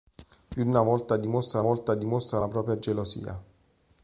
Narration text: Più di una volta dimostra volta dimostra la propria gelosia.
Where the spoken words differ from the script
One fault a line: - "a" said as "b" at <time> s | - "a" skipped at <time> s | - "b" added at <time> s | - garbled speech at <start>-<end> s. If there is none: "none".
none